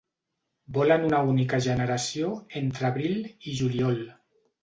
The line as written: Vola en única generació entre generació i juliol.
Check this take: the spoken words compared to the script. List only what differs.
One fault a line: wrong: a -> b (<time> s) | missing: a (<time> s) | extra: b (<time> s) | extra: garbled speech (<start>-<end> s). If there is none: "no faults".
extra: una (1.1 s)
wrong: generació -> abril (2.9 s)